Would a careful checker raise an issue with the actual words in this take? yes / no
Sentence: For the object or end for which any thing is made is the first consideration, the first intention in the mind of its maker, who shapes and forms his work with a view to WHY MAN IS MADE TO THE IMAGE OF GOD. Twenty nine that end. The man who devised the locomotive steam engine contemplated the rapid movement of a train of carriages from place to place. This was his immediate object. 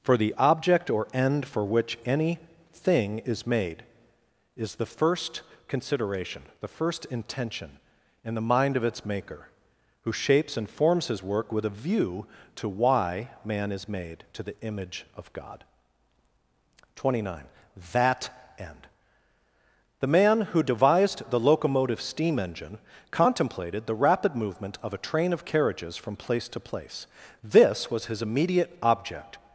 no